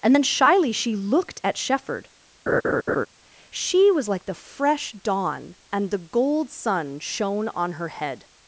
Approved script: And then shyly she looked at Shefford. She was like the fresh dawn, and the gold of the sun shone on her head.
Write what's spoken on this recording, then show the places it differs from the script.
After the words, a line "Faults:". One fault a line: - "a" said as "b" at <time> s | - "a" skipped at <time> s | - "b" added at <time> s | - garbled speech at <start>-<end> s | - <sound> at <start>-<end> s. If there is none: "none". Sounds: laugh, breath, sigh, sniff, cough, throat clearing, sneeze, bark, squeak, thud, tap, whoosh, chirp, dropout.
And then shyly she looked at Shefford. She was like the fresh dawn, and the gold sun shone on her head.
Faults:
- laugh at 2.5-3.1 s
- "of the" skipped at 6.5 s